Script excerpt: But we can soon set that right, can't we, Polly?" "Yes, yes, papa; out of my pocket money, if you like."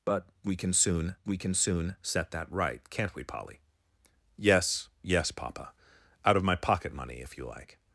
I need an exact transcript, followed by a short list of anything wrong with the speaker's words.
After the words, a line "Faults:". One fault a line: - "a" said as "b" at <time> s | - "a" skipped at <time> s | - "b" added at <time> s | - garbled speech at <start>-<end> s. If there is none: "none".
But we can soon we can soon set that right, can't we, Polly?" "Yes, yes, papa; out of my pocket money, if you like."
Faults:
- "we can soon" added at 1.2 s